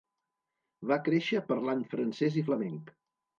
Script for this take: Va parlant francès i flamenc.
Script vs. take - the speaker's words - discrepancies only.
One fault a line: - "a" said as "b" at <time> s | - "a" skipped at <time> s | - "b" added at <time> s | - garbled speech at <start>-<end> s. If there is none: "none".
- "créixer" added at 1.1 s